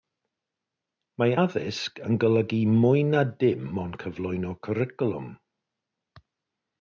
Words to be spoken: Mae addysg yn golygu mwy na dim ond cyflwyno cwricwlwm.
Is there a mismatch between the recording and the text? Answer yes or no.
no